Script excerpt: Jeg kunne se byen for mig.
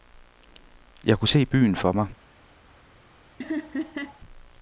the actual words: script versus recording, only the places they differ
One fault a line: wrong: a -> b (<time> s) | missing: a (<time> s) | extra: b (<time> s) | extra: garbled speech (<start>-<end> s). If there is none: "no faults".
no faults